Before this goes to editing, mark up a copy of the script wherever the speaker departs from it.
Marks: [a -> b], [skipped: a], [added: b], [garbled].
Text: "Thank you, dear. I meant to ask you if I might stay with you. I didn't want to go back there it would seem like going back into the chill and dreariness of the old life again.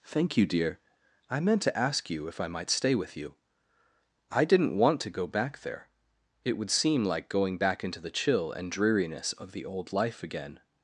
"Thank you, dear. I meant to ask you if I might stay with you. I didn't want to go back there it would seem like going back into the chill and dreariness of the old life again.